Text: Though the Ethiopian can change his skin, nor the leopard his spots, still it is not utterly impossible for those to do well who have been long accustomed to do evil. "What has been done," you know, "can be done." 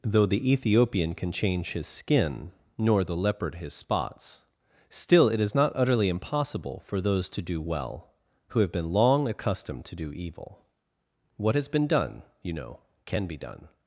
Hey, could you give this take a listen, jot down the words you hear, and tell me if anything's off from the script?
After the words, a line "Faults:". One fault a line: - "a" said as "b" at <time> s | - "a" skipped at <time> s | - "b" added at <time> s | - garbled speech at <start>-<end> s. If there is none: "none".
Though the Ethiopian can change his skin, nor the leopard his spots, still it is not utterly impossible for those to do well who have been long accustomed to do evil. "What has been done," you know, "can be done."
Faults:
none